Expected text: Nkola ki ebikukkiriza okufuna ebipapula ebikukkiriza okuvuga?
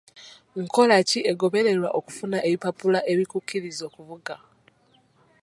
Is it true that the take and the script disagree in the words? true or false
true